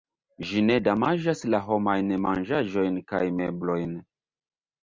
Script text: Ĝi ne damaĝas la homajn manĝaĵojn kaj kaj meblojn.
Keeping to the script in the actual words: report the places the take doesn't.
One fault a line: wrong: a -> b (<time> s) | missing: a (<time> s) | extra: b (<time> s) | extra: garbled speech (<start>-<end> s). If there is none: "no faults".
missing: kaj (3.2 s)